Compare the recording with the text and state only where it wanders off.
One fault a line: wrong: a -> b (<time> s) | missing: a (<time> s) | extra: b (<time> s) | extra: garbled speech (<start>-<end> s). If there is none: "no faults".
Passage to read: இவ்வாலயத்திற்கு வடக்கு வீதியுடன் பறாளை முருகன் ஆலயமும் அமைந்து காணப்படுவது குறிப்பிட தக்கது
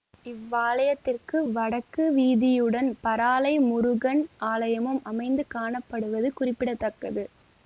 no faults